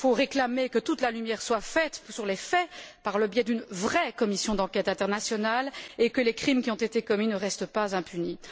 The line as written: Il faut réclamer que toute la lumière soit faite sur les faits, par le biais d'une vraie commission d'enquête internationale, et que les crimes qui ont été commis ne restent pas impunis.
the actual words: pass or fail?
pass